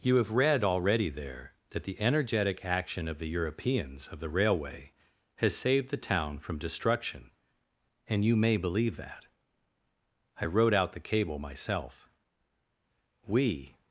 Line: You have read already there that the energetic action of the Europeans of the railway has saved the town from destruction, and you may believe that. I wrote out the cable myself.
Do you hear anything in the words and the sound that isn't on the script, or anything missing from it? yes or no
yes